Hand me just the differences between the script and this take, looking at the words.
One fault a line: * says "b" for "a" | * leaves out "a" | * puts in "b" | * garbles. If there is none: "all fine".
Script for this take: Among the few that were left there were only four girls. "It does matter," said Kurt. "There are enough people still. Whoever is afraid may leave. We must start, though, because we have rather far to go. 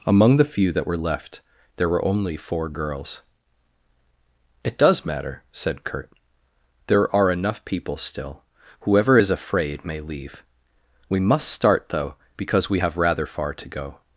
all fine